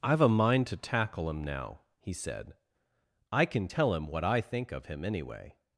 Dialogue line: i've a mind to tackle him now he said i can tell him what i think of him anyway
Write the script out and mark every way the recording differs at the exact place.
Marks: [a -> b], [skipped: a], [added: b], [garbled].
i've a mind to tackle him now he said i can tell him what i think of him anyway